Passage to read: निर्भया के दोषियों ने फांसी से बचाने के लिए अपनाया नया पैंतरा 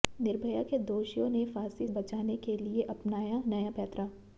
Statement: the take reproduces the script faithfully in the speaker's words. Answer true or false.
false